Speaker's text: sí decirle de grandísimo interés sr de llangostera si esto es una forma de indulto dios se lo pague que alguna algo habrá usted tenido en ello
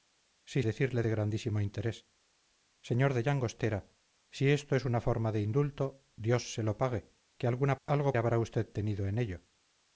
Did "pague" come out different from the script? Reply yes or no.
no